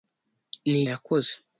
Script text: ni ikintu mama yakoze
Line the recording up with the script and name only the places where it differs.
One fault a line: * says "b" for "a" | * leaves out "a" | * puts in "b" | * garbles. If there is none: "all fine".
* leaves out "ikintu mama"